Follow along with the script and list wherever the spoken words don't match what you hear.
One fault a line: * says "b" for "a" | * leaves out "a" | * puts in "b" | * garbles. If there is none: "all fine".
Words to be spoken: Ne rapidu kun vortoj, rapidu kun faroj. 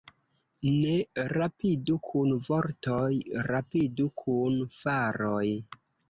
all fine